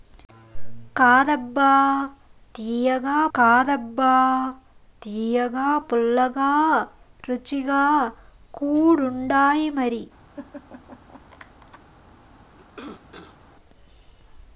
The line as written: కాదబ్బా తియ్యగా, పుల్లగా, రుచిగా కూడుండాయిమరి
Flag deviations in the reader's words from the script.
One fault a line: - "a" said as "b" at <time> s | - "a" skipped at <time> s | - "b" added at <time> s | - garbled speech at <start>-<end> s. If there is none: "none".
- "కాదబ్బా తియ్యగా" added at 3.3 s